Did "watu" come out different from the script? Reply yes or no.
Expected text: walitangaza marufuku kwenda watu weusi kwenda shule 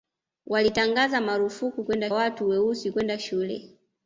no